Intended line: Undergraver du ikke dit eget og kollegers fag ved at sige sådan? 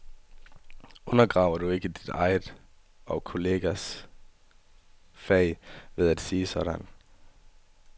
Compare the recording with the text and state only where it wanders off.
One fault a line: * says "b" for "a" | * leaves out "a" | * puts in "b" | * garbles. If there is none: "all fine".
all fine